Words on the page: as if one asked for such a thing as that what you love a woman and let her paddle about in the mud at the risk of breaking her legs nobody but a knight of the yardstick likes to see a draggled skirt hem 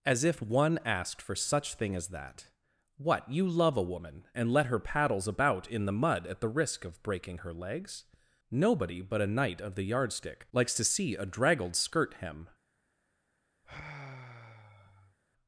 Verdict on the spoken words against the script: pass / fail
fail